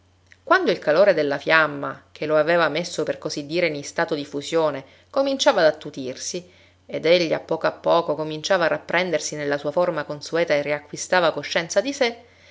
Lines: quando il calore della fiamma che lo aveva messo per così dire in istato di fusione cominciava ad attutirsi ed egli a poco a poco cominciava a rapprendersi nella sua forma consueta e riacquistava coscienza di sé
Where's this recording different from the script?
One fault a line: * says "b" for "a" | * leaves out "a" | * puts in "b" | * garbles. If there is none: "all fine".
all fine